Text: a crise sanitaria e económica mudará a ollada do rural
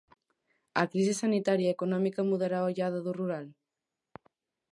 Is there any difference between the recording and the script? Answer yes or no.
no